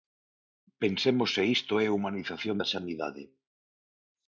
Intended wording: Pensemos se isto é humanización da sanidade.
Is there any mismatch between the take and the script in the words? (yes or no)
no